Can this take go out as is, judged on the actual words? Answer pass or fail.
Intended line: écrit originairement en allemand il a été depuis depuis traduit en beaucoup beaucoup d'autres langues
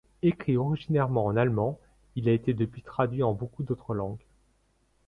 fail